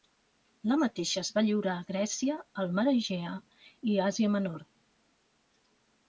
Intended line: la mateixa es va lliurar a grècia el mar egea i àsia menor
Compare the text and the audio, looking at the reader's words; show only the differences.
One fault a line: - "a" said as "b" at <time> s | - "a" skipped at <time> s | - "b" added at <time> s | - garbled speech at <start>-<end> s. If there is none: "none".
none